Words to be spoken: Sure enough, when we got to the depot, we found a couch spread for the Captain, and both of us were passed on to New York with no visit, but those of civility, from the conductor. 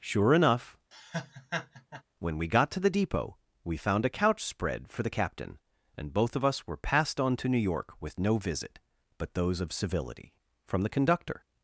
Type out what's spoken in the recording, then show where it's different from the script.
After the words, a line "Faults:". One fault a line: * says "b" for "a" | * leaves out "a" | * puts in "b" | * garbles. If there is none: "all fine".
Sure enough, when we got to the depot, we found a couch spread for the Captain, and both of us were passed on to New York with no visit, but those of civility, from the conductor.
Faults:
all fine